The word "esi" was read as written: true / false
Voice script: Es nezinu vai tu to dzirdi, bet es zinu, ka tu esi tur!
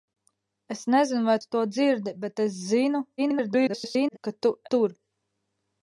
false